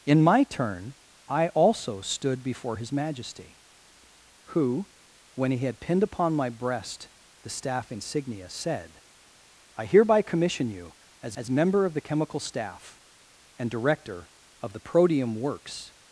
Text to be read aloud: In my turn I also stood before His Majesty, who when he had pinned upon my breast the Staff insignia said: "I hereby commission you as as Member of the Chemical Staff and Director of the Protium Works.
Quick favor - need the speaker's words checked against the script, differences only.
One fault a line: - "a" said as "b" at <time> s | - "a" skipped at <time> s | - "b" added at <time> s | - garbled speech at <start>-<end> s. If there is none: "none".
none